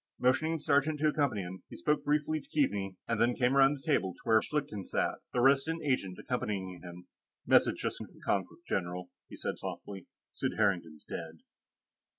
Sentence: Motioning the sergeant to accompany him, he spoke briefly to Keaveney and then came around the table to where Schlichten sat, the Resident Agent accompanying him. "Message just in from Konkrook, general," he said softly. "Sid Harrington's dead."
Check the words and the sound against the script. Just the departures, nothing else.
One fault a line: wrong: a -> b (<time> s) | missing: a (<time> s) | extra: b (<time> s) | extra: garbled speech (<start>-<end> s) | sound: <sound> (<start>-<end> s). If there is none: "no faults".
no faults